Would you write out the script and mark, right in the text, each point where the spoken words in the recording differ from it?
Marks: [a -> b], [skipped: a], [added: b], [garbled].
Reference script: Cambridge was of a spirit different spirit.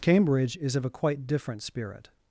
Cambridge [was -> is] of a [spirit -> quite] different spirit.